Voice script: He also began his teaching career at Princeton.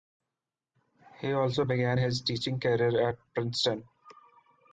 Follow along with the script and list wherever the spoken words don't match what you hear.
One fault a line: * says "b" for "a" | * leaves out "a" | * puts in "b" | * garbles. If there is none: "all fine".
all fine